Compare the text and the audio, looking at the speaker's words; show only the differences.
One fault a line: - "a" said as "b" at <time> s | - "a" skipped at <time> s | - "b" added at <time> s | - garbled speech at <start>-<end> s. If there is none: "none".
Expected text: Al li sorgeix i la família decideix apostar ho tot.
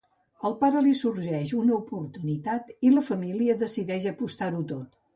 - "pare" added at 0.6 s
- "una oportunitat" added at 1.6 s